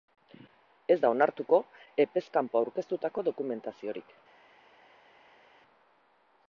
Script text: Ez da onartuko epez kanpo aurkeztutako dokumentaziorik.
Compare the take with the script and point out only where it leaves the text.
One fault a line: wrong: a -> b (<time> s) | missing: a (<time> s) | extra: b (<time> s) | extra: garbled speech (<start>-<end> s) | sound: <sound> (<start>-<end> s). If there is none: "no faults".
no faults